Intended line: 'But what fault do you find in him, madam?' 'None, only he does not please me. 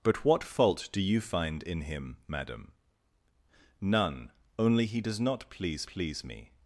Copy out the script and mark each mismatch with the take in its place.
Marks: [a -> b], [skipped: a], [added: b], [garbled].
'But what fault do you find in him, madam?' 'None, only he does not please [added: please] me.